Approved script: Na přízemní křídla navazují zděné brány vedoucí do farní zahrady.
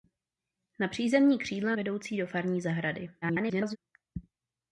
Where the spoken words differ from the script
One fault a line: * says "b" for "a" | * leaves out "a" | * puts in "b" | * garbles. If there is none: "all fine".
* leaves out "navazují zděné brány"
* garbles